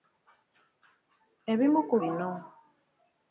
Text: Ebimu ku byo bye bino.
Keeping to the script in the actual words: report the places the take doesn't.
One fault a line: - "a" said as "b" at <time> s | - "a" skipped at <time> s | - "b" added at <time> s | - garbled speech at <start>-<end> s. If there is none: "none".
- "byo bye" skipped at 1.9 s